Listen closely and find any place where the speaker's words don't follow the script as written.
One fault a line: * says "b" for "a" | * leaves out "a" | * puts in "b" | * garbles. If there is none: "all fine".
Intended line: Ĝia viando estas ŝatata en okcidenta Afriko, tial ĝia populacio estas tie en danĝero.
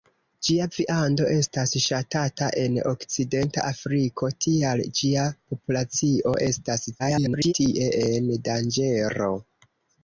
* garbles